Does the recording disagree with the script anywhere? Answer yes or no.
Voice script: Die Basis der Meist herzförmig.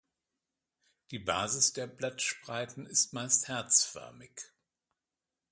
yes